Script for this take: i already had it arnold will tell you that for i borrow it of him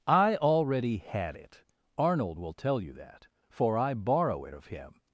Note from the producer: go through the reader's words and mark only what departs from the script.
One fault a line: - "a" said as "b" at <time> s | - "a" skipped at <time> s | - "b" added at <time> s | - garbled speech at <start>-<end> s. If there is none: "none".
none